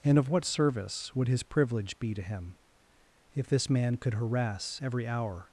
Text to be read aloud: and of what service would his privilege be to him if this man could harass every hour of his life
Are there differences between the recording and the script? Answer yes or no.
yes